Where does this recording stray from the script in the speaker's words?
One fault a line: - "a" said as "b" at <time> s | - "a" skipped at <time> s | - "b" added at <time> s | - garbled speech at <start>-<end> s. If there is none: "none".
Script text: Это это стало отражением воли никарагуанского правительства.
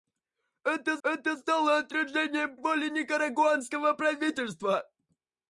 none